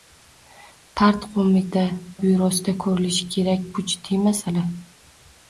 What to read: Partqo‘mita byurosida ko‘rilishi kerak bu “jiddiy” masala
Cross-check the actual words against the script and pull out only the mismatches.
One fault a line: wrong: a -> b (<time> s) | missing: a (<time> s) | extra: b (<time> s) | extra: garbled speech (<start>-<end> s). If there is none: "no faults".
no faults